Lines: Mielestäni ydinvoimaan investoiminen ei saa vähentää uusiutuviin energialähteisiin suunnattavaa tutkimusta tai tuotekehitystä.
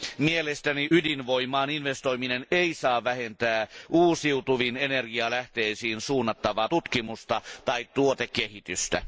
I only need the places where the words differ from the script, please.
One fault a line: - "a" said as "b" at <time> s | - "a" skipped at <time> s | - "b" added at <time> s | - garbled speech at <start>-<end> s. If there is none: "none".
none